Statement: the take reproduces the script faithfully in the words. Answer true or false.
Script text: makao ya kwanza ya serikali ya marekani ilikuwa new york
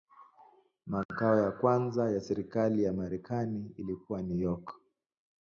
true